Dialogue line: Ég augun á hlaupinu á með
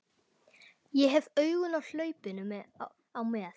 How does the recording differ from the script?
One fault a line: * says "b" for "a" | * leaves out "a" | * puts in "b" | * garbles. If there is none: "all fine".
* puts in "hef"